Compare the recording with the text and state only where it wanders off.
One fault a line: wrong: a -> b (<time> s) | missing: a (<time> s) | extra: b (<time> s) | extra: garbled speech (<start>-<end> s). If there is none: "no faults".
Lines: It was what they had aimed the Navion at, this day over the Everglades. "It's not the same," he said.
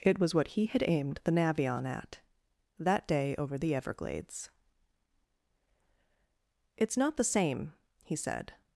wrong: they -> he (0.5 s)
wrong: this -> that (2.8 s)